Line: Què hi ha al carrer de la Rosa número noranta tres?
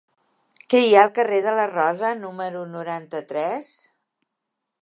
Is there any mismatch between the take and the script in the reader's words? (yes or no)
no